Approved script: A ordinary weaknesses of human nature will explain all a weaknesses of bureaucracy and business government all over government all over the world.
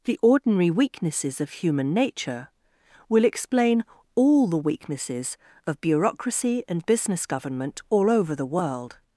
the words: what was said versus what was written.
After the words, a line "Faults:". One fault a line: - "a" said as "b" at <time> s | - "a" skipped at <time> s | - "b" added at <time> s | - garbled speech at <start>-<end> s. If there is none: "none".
The ordinary weaknesses of human nature will explain all the weaknesses of bureaucracy and business government all over the world.
Faults:
- "A" said as "The" at 0.1 s
- "a" said as "the" at 4.5 s
- "government all over" skipped at 8.4 s